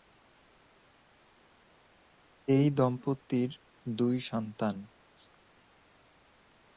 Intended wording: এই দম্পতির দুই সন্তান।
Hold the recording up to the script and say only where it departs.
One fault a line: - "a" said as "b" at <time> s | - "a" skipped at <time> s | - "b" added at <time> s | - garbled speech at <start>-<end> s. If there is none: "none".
none